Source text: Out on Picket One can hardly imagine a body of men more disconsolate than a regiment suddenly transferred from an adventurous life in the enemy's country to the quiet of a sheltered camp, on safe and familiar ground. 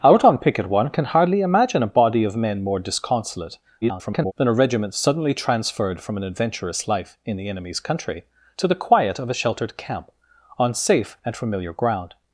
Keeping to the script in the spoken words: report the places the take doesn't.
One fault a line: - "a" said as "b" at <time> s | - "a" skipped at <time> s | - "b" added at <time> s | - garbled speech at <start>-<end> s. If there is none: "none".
- garbled speech at 3.8-4.3 s